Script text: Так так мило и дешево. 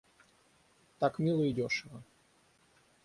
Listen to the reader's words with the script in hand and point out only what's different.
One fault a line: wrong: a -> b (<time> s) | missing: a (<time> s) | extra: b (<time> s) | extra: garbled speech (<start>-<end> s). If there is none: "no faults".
missing: так (1.2 s)